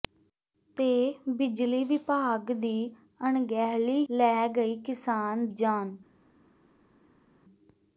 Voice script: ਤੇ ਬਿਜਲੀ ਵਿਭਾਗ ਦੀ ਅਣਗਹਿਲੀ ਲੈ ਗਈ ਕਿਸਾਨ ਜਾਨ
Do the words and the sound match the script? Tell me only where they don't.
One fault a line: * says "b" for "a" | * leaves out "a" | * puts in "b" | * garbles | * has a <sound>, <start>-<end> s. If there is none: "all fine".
all fine